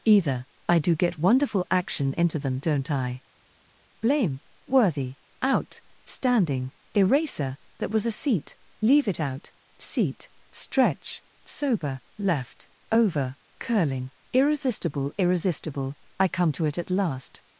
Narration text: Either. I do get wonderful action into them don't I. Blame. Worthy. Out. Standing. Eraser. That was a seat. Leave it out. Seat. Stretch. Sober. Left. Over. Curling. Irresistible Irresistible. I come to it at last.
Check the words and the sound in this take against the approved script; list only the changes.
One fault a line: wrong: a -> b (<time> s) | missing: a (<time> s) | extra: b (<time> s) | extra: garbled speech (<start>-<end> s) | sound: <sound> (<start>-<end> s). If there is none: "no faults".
no faults